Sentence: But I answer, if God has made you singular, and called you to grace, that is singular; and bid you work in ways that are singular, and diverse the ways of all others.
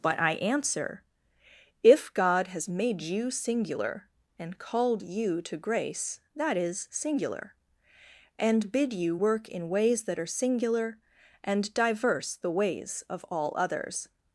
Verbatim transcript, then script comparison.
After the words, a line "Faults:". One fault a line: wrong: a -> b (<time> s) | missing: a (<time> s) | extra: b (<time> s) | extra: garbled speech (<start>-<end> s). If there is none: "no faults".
But I answer, if God has made you singular, and called you to grace, that is singular; and bid you work in ways that are singular, and diverse the ways of all others.
Faults:
no faults